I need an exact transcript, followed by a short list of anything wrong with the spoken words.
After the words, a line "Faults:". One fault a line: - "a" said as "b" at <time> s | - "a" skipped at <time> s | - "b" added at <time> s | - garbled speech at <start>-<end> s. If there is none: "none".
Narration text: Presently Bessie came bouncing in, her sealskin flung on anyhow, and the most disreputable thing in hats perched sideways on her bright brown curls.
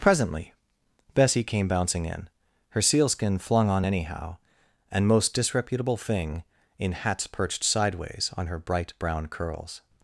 Presently Bessie came bouncing in, her sealskin flung on anyhow, and most disreputable thing in hats perched sideways on her bright brown curls.
Faults:
- "the" skipped at 5.1 s